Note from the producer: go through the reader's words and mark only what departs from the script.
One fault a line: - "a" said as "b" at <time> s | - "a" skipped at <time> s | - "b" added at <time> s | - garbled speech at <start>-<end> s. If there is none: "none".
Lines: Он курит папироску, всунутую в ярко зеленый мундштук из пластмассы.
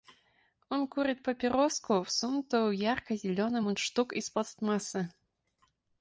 none